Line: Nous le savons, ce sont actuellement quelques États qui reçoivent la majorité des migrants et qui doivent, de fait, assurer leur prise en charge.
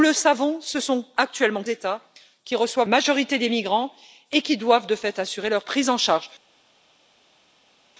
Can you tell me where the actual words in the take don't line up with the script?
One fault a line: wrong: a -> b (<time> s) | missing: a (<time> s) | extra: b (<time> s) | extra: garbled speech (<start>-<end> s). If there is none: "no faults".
missing: quelques (1.6 s)
missing: la (2.9 s)